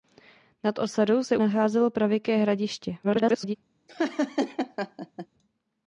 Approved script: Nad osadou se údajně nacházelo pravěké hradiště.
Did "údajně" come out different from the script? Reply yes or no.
yes